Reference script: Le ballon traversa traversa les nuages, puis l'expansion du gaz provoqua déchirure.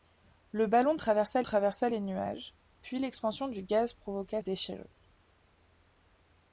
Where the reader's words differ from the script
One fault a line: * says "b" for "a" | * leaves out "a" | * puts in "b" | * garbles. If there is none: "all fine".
all fine